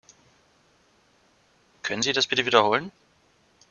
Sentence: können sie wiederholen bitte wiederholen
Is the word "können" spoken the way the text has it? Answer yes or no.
yes